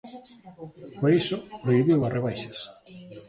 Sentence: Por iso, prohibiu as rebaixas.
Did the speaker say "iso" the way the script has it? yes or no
yes